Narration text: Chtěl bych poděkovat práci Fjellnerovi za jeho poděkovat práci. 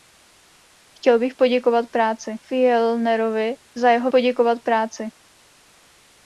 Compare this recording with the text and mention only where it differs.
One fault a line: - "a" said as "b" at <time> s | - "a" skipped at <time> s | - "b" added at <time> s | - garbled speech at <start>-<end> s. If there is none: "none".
none